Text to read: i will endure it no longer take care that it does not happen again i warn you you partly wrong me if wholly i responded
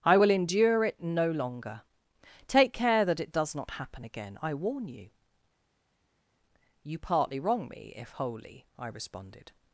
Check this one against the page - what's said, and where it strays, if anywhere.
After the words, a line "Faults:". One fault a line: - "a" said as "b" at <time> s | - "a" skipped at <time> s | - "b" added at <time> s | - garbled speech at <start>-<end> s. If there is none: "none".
i will endure it no longer take care that it does not happen again i warn you you partly wrong me if wholly i responded
Faults:
none